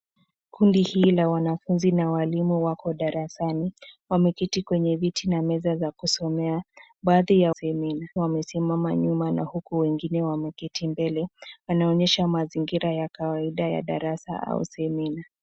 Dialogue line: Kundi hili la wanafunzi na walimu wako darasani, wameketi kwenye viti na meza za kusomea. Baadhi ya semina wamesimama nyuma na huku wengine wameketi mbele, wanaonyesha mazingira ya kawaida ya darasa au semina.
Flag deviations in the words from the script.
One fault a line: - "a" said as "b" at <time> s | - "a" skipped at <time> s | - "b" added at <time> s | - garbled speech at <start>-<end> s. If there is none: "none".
none